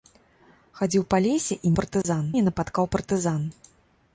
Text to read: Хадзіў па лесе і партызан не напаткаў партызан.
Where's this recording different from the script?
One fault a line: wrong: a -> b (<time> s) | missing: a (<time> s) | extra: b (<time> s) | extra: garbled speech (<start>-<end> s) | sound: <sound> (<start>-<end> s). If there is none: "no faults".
sound: dropout (2.0-2.0 s)